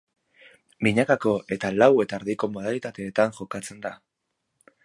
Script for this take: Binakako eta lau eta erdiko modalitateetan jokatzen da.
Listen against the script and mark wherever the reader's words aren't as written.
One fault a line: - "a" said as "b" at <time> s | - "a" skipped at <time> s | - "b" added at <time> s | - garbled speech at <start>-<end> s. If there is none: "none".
none